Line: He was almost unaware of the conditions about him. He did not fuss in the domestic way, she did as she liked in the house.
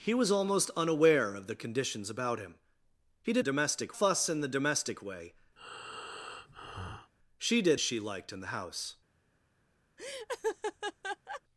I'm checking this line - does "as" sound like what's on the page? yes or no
no